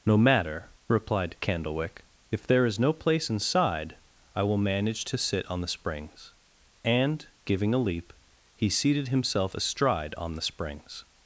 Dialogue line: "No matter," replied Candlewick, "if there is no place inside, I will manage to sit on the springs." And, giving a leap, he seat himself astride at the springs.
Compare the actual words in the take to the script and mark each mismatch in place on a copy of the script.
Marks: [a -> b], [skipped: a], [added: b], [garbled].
"No matter," replied Candlewick, "if there is no place inside, I will manage to sit on the springs." And, giving a leap, he [seat -> seated] himself astride [at -> on] the springs.